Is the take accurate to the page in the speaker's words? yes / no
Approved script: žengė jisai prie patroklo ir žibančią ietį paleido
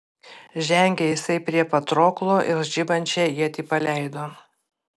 yes